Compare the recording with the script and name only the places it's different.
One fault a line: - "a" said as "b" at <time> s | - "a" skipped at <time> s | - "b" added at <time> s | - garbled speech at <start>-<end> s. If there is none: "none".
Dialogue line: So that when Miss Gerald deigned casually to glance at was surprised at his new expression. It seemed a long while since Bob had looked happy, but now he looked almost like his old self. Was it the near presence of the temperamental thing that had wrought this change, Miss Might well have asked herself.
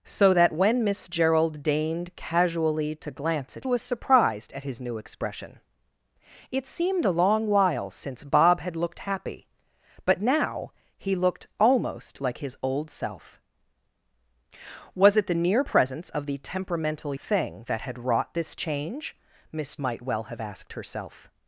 none